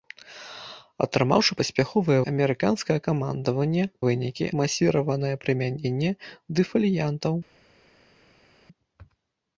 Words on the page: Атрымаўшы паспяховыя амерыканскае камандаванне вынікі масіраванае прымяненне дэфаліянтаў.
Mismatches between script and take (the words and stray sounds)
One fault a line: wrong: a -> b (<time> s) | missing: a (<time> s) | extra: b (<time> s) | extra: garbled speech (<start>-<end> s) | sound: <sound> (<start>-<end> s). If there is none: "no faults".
no faults